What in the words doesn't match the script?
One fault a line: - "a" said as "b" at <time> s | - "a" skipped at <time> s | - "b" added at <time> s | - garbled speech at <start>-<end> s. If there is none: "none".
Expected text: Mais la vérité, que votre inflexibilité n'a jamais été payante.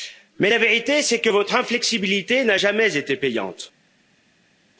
- "c'est" added at 1.0 s